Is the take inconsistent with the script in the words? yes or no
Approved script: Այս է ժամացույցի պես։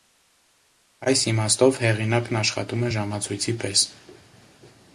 yes